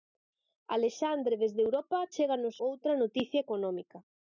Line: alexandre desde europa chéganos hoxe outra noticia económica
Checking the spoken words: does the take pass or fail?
fail